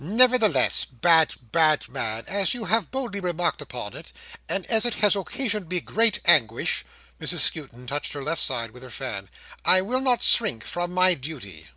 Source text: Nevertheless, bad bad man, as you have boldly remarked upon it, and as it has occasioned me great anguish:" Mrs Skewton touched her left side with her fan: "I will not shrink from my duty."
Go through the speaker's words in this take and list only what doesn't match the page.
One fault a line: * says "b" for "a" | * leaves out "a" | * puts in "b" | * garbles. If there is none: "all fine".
all fine